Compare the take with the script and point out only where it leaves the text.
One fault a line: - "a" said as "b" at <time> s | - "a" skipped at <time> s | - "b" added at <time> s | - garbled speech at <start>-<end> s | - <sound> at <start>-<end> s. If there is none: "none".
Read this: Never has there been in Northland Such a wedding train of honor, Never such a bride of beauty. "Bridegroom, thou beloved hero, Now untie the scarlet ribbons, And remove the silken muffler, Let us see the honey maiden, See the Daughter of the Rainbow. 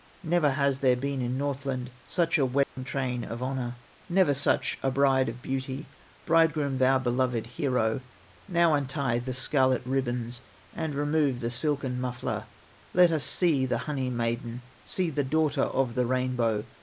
- dropout at 2.6-2.8 s